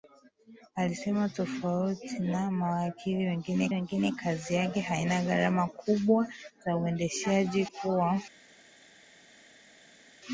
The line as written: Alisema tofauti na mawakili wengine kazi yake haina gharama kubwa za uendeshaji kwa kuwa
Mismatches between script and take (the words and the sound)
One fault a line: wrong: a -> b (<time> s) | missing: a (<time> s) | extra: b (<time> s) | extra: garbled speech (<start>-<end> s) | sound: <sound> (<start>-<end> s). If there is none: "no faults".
extra: wengine (3.7 s)
missing: kwa (7.7 s)